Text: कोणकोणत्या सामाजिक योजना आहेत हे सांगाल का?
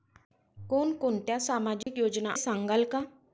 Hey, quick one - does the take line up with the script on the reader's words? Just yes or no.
no